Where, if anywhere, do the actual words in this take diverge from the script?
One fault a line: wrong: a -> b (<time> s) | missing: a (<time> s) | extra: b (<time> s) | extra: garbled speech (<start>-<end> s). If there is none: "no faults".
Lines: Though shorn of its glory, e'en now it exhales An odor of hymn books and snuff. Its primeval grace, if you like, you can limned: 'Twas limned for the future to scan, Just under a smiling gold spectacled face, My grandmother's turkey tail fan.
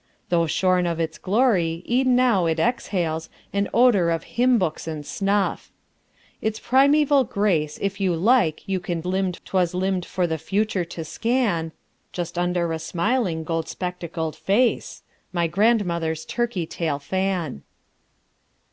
no faults